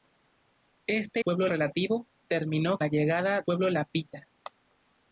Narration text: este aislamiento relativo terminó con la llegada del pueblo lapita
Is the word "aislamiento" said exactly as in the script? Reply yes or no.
no